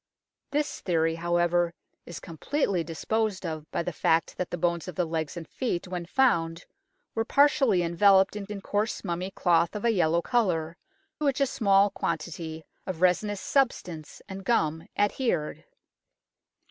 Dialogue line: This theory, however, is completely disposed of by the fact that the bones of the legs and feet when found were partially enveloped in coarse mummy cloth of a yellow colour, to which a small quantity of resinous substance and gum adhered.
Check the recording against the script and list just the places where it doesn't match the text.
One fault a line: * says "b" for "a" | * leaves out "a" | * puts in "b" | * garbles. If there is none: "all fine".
* puts in "in"
* leaves out "to"